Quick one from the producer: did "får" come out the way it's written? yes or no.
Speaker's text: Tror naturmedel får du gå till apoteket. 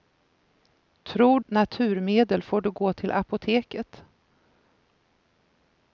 yes